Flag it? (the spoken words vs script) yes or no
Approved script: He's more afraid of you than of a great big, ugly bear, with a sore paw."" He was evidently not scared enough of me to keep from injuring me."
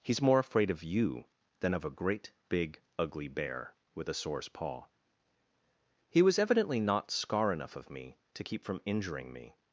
yes